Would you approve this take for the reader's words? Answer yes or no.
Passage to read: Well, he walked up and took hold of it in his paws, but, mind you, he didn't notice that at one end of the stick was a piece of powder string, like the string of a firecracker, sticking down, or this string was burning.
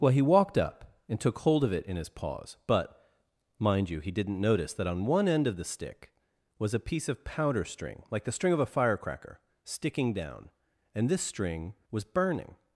no